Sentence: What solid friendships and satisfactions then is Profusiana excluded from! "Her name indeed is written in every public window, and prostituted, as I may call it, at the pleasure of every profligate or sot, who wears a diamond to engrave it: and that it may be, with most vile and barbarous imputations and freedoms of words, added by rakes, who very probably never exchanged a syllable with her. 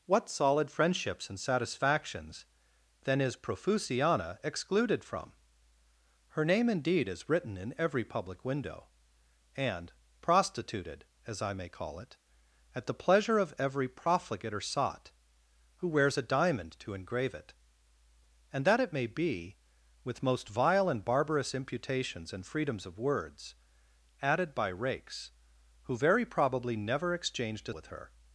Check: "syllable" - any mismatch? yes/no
yes